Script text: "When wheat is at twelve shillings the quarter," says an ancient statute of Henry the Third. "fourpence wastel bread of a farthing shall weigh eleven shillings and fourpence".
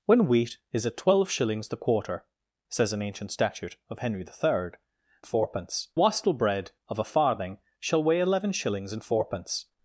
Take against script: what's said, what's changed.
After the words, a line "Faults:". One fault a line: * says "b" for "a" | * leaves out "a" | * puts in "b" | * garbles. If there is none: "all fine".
"When wheat is at twelve shillings the quarter," says an ancient statute of Henry the Third. "fourpence wastel bread of a farthing shall weigh eleven shillings and fourpence".
Faults:
all fine